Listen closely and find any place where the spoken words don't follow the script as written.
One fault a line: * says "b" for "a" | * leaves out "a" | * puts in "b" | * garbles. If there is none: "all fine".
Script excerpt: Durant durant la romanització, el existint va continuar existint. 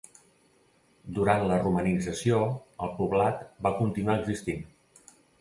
* leaves out "durant"
* says "poblat" for "existint"